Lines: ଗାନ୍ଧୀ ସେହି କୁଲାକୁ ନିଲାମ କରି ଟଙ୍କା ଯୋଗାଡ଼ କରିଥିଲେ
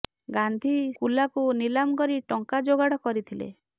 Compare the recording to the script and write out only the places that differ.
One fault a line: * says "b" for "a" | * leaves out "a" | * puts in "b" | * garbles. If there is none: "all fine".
* leaves out "ସେହି"